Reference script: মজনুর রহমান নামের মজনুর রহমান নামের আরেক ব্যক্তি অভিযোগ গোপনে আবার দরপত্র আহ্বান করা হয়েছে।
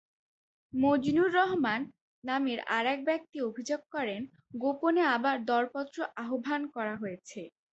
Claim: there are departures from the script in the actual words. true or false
true